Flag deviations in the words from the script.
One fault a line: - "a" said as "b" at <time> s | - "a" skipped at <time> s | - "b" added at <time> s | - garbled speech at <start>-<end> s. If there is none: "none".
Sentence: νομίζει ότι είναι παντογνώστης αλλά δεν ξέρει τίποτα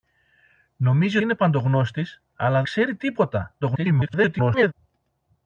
- "ότι" skipped at 1.2 s
- "δεν" skipped at 2.6 s
- garbled speech at 3.6-4.7 s